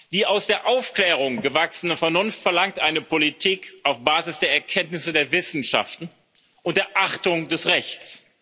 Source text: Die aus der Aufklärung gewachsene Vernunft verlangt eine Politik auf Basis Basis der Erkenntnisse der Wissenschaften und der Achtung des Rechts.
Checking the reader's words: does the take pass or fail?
fail